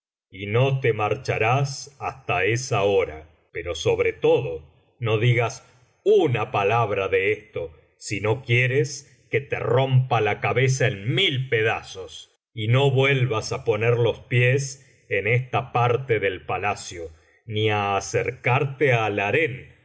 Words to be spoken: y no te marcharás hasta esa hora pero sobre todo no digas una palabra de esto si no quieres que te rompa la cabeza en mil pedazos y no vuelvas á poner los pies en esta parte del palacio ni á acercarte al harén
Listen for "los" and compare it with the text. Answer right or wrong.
right